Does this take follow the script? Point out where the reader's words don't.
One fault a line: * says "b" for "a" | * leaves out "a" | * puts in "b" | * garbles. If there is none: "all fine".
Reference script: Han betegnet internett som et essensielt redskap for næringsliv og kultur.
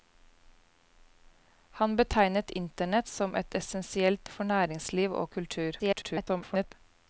* leaves out "redskap"
* garbles